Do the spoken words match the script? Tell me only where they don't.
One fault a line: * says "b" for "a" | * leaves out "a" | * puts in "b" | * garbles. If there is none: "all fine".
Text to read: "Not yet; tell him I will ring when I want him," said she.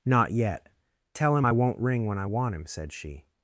* says "won't" for "will"